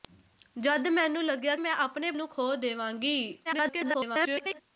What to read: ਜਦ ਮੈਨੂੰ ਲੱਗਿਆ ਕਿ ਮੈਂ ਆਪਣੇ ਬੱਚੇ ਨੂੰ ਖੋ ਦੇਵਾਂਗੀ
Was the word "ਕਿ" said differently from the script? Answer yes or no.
yes